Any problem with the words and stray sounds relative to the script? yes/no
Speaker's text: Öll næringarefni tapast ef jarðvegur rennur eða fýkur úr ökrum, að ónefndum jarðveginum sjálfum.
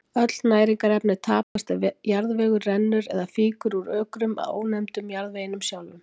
yes